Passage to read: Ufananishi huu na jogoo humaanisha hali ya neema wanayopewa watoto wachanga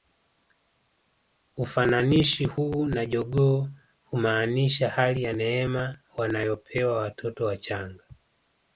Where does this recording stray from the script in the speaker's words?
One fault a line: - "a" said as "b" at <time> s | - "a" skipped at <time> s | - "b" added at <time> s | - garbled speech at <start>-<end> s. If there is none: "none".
none